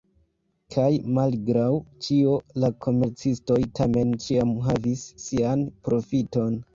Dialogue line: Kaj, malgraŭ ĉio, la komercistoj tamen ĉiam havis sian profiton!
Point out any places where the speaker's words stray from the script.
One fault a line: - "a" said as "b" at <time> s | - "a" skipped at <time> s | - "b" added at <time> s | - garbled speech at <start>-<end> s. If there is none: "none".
none